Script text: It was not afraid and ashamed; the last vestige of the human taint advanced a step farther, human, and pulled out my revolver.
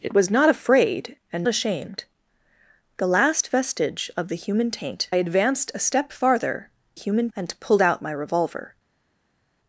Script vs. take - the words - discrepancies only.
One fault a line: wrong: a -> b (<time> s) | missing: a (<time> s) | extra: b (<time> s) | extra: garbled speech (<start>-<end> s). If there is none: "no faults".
no faults